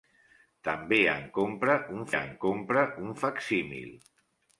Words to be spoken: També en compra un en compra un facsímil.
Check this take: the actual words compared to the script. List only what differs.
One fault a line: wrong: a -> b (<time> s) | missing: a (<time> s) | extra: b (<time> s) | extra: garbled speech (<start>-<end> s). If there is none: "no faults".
no faults